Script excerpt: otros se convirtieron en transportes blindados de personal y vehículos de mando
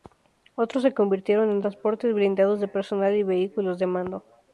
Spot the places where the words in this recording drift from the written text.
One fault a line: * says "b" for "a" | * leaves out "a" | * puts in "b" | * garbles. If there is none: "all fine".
all fine